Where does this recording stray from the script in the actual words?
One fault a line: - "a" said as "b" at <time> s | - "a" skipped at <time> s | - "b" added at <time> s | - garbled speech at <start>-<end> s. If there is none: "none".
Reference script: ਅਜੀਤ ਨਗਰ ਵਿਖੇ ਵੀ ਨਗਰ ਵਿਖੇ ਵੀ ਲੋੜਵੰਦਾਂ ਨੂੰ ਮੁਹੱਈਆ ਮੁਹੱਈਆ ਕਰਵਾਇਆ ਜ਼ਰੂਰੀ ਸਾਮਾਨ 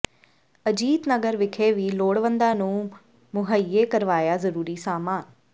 - "ਨਗਰ ਵਿਖੇ ਵੀ" skipped at 1.9 s
- "ਮੁਹੱਈਆ" skipped at 3.8 s